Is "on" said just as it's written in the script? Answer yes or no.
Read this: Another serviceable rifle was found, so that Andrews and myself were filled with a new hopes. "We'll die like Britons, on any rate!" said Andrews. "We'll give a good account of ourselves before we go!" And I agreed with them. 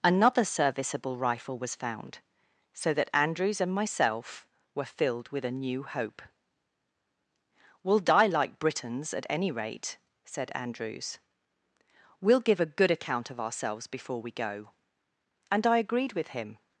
no